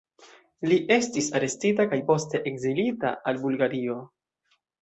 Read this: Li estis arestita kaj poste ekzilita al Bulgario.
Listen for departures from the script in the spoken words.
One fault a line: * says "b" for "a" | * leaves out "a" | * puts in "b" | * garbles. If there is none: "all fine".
all fine